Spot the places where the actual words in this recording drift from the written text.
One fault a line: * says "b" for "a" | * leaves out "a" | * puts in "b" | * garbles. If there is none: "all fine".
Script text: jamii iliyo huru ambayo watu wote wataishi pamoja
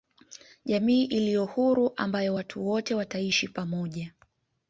all fine